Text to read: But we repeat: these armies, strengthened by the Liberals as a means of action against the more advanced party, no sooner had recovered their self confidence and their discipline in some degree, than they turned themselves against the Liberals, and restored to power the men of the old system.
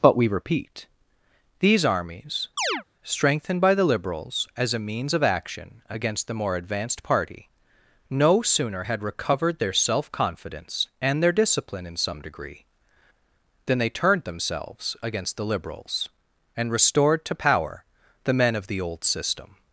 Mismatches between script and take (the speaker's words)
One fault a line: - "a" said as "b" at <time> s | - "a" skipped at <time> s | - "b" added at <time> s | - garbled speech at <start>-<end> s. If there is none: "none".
none